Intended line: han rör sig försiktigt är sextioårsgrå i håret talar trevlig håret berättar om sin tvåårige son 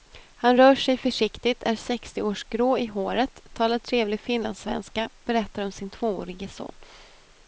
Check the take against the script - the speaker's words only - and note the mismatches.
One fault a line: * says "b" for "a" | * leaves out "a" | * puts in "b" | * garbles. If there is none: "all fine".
* says "finlandssvenska" for "håret"